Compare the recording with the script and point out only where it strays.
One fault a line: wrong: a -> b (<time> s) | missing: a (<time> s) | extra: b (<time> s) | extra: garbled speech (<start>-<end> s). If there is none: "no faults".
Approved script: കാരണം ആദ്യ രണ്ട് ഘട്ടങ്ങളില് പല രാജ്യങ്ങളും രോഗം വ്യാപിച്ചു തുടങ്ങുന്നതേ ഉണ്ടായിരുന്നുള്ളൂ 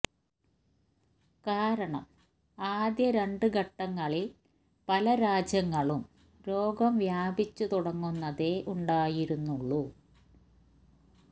no faults